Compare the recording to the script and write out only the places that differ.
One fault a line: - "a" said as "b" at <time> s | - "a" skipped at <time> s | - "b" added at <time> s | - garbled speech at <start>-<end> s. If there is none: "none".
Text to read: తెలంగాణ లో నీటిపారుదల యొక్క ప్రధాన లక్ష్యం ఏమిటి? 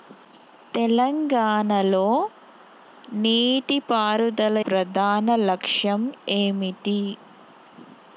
- "యొక్క" skipped at 4.6 s